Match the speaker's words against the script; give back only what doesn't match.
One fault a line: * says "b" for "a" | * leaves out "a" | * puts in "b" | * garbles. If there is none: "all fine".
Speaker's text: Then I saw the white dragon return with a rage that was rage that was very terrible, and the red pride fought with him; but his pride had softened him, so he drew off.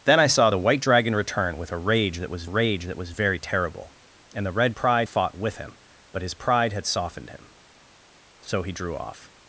all fine